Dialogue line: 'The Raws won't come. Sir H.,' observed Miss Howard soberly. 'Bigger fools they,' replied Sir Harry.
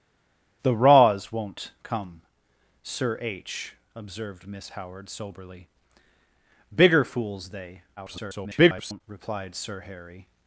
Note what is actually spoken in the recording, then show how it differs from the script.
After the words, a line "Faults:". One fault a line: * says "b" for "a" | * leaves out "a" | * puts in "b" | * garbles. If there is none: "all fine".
'The Raws won't come. Sir H.,' observed Miss Howard soberly. 'Bigger fools they,' [garbled] replied Sir Harry.
Faults:
* garbles